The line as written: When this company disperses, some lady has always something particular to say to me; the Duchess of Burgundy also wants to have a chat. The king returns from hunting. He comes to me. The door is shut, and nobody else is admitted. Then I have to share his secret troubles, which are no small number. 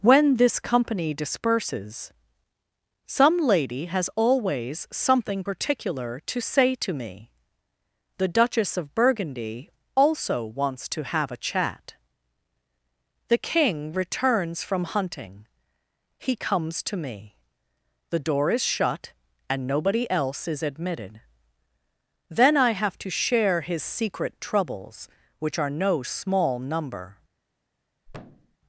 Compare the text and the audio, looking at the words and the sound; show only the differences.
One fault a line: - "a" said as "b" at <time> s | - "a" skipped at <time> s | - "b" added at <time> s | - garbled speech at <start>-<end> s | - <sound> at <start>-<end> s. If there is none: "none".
- thud at 28.1-28.6 s